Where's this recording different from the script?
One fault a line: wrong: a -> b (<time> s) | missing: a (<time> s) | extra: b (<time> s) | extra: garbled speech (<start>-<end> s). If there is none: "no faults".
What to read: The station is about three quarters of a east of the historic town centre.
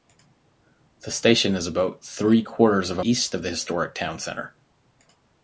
no faults